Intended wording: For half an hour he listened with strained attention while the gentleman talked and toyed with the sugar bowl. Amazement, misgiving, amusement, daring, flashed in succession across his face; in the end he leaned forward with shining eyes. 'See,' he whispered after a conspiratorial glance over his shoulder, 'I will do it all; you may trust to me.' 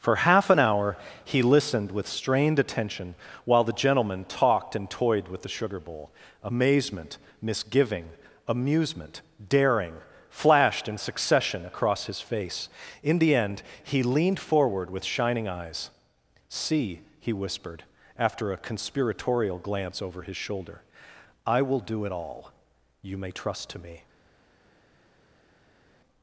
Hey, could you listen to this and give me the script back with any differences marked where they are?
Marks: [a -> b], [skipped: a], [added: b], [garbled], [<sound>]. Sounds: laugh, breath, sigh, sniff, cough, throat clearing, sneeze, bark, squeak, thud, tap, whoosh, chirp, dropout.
For half an hour he listened with strained attention while the gentleman talked and toyed with the sugar bowl. Amazement, misgiving, amusement, daring, flashed in succession across his face; in the end he leaned forward with shining eyes. 'See,' he whispered after a conspiratorial glance over his shoulder, 'I will do it all; you may trust to me.'